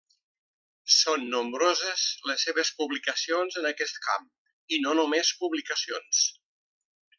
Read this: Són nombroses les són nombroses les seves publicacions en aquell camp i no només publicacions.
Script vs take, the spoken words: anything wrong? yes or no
yes